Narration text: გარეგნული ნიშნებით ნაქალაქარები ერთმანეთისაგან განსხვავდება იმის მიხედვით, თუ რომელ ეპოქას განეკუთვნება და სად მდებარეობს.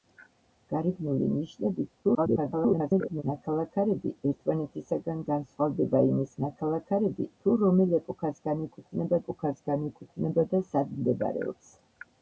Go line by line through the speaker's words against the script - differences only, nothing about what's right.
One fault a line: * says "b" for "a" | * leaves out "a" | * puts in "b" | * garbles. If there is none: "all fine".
* garbles
* says "ნაქალაქარები" for "მიხედვით"
* puts in "ეპოქას განეკუთვნება"